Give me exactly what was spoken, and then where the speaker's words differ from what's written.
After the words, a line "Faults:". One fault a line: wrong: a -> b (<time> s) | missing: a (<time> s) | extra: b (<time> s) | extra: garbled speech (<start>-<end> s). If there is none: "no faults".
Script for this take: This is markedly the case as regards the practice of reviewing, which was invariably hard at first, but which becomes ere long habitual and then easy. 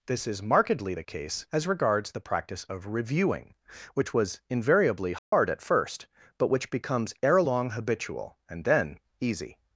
This is markedly the case as regards the practice of reviewing, which was invariably hard at first, but which becomes ere long habitual and then easy.
Faults:
no faults